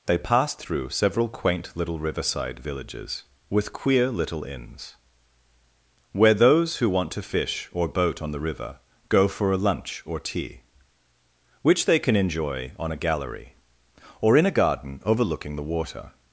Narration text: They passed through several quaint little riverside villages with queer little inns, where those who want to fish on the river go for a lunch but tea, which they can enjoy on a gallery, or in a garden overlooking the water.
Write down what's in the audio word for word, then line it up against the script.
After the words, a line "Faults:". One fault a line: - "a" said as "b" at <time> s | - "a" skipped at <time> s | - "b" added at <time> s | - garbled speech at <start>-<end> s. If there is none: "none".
They passed through several quaint little riverside villages with queer little inns, where those who want to fish or boat on the river go for a lunch or tea, which they can enjoy on a gallery, or in a garden overlooking the water.
Faults:
- "or boat" added at 7.7 s
- "but" said as "or" at 10.0 s